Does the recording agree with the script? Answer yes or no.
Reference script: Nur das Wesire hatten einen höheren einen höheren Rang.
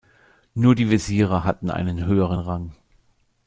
no